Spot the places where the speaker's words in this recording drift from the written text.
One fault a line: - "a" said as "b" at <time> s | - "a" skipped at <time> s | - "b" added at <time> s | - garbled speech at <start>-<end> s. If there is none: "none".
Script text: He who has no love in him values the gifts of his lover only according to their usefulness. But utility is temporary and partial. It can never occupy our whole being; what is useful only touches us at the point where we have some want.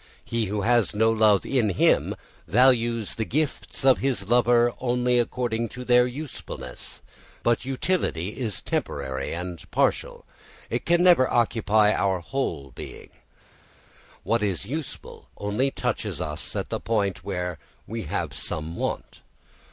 none